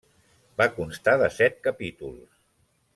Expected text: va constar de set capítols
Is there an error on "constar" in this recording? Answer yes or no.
no